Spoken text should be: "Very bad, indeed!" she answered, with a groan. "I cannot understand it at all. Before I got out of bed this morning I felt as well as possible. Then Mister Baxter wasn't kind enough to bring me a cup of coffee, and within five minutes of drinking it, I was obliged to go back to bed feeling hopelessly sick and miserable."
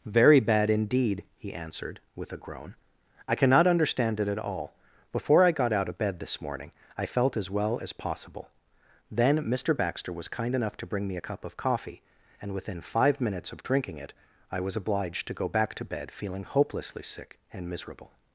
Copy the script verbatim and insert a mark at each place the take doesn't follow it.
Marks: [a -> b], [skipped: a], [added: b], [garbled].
"Very bad, indeed!" [she -> he] answered, with a groan. "I cannot understand it at all. Before I got out of bed this morning I felt as well as possible. Then Mister Baxter [wasn't -> was] kind enough to bring me a cup of coffee, and within five minutes of drinking it, I was obliged to go back to bed feeling hopelessly sick and miserable."